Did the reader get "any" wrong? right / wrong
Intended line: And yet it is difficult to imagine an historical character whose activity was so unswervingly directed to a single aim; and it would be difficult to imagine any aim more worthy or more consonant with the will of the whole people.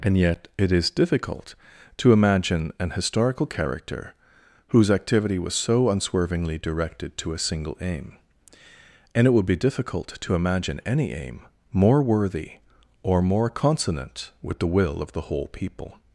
right